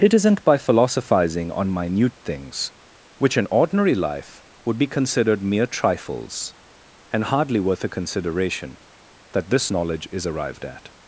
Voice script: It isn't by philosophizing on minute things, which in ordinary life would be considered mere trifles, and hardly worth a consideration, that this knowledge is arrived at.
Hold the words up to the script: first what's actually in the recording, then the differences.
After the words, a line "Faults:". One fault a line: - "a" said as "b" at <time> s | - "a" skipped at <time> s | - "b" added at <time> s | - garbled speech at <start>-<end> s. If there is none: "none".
It isn't by philosophizing on minute things, which in ordinary life would be considered mere trifles, and hardly worth a consideration, that this knowledge is arrived at.
Faults:
none